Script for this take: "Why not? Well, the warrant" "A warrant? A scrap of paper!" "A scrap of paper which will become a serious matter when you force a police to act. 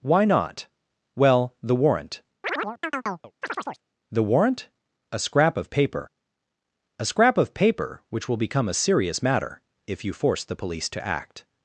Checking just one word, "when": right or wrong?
wrong